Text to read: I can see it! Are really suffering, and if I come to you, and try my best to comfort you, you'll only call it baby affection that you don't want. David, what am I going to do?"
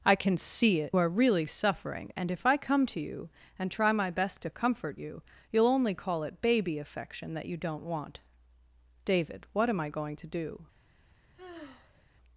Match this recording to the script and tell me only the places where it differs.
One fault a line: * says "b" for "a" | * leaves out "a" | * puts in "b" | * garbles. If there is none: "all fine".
all fine